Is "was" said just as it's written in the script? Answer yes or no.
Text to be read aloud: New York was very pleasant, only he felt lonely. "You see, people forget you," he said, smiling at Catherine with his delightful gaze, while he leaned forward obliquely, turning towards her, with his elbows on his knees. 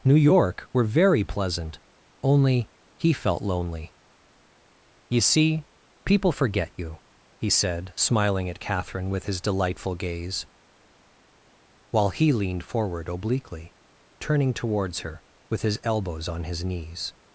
no